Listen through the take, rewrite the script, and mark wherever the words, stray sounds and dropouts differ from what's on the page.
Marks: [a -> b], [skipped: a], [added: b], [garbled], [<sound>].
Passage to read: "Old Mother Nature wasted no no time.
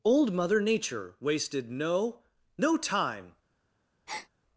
"Old Mother Nature wasted no no time. [breath]